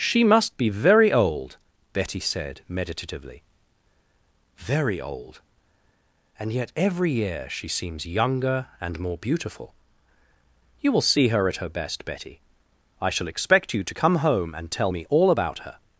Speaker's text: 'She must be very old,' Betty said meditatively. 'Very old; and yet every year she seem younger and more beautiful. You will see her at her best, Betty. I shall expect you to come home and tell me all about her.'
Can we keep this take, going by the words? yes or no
no